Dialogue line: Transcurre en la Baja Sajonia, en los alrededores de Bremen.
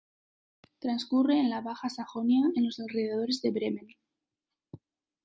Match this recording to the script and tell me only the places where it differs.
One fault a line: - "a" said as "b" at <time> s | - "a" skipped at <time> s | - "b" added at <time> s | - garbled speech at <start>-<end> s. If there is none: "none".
none